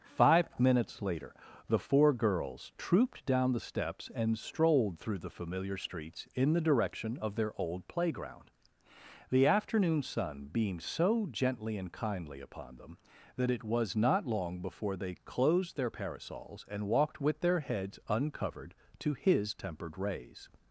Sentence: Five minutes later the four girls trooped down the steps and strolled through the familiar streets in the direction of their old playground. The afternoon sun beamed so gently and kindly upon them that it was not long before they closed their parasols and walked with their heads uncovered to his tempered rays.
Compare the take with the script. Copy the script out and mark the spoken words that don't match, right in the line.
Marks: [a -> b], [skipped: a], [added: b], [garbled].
Five minutes later the four girls trooped down the steps and strolled through the familiar streets in the direction of their old playground. The afternoon sun beamed so gently and kindly upon them that it was not long before they closed their parasols and walked with their heads uncovered to his tempered rays.